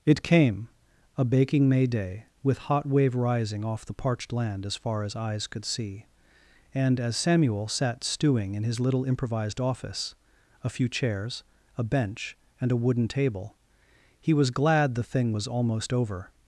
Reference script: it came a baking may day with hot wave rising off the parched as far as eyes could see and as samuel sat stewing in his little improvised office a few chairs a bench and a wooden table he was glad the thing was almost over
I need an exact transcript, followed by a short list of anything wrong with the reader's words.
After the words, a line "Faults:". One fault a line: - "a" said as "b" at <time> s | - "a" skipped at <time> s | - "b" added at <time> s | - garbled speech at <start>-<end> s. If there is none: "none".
it came a baking may day with hot wave rising off the parched land as far as eyes could see and as samuel sat stewing in his little improvised office a few chairs a bench and a wooden table he was glad the thing was almost over
Faults:
- "land" added at 4.3 s